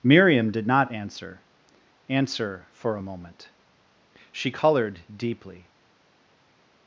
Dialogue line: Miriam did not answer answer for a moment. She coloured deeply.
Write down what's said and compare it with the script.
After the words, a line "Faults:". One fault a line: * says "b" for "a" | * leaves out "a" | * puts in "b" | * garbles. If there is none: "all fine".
Miriam did not answer answer for a moment. She coloured deeply.
Faults:
all fine